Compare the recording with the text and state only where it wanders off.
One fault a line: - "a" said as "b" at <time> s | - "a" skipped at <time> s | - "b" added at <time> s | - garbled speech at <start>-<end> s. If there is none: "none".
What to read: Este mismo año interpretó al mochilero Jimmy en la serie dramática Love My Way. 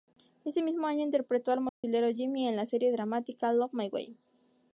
- "Este" said as "Ese" at 0.5 s